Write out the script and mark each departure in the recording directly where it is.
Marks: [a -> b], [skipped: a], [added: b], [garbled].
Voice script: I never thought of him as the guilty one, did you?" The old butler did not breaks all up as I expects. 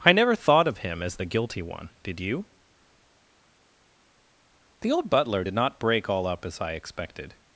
I never thought of him as the guilty one, did you?" The old butler did not [breaks -> break] all up as I [expects. -> expected]